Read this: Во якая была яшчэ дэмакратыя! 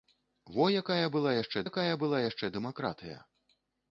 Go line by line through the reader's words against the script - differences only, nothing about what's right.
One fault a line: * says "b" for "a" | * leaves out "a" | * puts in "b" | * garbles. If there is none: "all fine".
* puts in "якая была яшчэ"